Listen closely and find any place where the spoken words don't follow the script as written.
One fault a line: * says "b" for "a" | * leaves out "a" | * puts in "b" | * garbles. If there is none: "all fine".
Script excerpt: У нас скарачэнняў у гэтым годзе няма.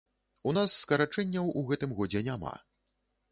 all fine